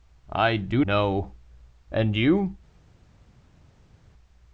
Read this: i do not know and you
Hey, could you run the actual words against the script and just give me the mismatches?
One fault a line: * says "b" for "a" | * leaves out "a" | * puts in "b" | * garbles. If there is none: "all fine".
* leaves out "not"